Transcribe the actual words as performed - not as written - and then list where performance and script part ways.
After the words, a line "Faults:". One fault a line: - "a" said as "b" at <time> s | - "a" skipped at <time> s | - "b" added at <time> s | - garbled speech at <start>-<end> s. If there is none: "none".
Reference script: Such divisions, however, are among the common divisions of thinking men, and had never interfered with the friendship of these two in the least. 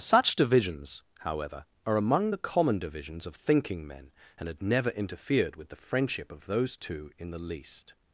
Such divisions, however, are among the common divisions of thinking men, and had never interfered with the friendship of those two in the least.
Faults:
- "these" said as "those" at 6.5 s